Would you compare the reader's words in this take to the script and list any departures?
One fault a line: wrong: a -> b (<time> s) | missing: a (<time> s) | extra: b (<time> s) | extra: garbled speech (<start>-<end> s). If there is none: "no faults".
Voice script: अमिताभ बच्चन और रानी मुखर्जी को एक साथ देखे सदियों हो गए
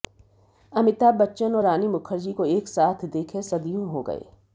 no faults